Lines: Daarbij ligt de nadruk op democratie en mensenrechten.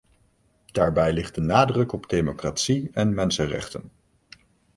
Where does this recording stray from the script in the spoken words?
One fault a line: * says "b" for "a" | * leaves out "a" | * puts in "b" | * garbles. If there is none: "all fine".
all fine